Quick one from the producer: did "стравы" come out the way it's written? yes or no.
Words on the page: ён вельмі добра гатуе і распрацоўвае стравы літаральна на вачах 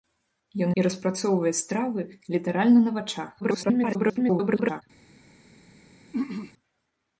yes